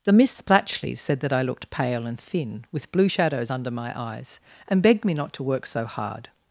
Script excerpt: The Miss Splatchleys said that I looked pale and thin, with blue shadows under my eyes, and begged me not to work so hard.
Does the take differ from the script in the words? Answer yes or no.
no